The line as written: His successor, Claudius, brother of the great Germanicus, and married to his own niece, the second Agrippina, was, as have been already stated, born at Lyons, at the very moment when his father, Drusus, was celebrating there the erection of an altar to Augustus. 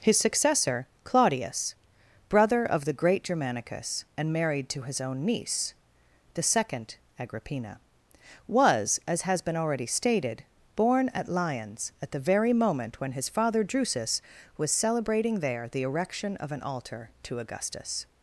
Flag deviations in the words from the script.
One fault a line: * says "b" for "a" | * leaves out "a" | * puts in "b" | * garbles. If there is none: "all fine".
* says "has" for "have"